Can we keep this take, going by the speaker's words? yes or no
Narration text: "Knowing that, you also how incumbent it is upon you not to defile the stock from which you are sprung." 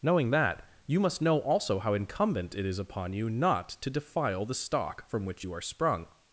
no